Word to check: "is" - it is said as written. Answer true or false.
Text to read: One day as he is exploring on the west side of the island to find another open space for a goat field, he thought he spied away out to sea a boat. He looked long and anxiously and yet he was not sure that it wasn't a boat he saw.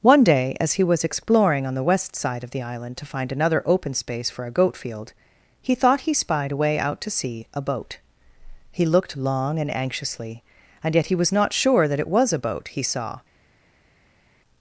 false